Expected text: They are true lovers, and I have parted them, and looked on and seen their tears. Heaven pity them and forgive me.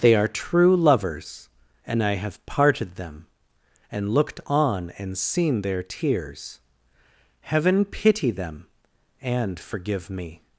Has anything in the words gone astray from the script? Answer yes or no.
no